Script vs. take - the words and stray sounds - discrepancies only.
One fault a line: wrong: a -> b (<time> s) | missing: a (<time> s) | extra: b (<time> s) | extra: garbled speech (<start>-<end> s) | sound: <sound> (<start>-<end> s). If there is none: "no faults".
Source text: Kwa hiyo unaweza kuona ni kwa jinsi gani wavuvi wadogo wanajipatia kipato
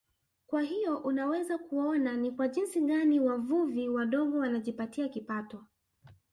no faults